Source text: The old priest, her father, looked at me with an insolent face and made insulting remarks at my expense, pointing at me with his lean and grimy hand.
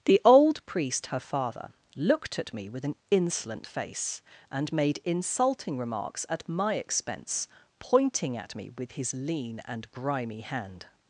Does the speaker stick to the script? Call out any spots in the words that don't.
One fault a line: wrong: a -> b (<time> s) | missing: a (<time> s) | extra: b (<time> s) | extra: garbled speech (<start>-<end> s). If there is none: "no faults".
no faults